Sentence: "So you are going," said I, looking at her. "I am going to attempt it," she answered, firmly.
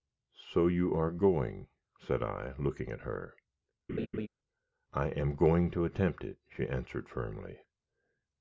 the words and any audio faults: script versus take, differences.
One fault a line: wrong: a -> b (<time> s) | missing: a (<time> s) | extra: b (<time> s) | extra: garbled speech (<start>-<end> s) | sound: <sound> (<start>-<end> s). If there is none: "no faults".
sound: laugh (3.9-4.3 s)